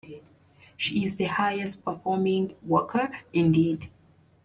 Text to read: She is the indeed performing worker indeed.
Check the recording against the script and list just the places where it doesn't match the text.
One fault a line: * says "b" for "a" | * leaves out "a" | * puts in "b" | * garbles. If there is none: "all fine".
* says "highest" for "indeed"